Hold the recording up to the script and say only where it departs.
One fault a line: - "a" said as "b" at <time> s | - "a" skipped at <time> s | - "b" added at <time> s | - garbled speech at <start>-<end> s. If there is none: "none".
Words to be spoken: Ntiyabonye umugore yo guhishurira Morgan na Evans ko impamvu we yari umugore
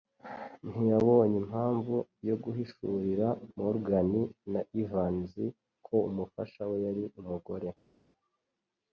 - "umugore" said as "impamvu" at 1.4 s
- "impamvu" said as "umufasha" at 6.1 s